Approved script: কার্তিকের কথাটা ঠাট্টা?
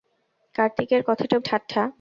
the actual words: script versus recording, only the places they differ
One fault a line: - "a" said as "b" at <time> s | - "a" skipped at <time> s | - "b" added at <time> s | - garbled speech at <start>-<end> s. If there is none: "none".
none